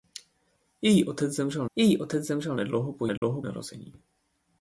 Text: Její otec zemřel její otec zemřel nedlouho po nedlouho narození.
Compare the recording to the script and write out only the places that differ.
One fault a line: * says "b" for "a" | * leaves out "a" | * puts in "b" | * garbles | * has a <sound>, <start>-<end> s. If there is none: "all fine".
* has a dropout, 3.2-3.2 s